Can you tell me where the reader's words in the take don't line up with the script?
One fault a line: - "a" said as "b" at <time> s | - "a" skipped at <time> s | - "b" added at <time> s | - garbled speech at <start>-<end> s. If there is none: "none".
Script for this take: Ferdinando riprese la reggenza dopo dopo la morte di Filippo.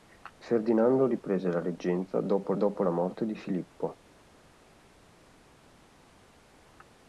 none